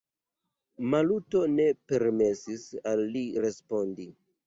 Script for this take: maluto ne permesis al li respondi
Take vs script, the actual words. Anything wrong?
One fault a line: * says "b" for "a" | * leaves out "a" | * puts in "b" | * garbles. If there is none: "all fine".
all fine